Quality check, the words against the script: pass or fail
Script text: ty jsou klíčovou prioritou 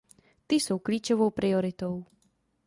pass